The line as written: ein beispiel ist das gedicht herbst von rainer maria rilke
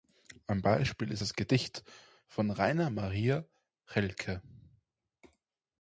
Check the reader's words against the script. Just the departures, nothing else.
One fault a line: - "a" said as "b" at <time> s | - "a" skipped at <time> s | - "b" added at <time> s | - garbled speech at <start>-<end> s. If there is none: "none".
- "herbst" skipped at 1.8 s